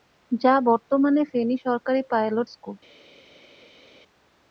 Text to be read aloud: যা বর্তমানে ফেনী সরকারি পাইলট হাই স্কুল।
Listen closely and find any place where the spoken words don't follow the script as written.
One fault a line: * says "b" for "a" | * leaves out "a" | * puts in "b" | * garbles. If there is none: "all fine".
* leaves out "হাই"